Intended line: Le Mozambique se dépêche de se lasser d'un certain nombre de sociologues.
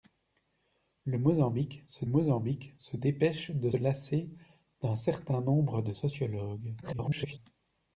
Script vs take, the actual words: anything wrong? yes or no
yes